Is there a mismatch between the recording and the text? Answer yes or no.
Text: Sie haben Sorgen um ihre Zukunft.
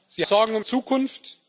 yes